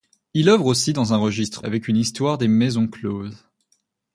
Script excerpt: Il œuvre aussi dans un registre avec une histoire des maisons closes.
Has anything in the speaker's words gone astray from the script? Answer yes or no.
no